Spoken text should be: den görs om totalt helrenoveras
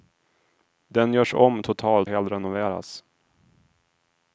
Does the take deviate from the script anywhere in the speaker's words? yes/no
no